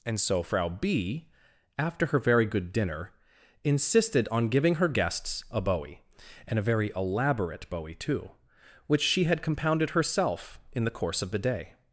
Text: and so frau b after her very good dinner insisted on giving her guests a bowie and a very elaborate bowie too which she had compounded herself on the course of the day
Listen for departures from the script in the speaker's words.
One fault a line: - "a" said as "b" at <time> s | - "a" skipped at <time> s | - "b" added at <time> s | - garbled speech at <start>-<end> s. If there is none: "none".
- "on" said as "in" at 10.7 s